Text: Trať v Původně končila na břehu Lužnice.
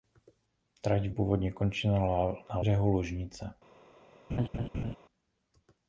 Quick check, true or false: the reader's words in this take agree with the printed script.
true